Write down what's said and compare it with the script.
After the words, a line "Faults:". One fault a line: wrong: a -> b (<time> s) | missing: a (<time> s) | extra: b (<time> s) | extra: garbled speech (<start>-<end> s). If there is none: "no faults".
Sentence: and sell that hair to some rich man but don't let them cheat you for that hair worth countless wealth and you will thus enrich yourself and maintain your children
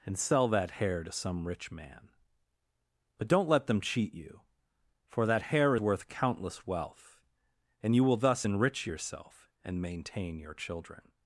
and sell that hair to some rich man but don't let them cheat you for that hair worth countless wealth and you will thus enrich yourself and maintain your children
Faults:
no faults